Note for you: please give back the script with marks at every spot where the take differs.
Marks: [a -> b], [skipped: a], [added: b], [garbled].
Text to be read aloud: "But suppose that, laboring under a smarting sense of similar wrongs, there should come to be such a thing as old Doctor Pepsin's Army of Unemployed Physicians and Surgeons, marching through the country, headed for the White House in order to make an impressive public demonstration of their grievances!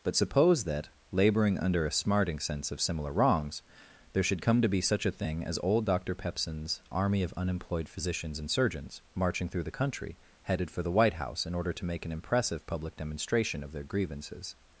"But suppose that, laboring under a smarting sense of similar wrongs, there should come to be such a thing as old Doctor Pepsin's Army of Unemployed Physicians and Surgeons, marching through the country, headed for the White House in order to make an impressive public demonstration of their grievances!